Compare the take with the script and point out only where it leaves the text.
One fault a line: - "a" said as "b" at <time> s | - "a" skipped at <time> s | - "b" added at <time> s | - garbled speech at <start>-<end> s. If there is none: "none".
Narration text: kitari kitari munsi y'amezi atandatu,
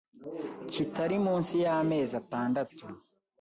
- "kitari" skipped at 1.2 s